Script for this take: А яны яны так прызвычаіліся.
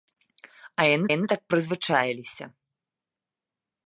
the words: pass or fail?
pass